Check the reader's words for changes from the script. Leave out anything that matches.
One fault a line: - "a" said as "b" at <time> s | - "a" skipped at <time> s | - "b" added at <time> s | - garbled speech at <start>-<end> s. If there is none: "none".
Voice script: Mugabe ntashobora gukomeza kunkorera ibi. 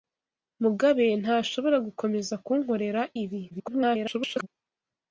- garbled speech at 3.5-4.5 s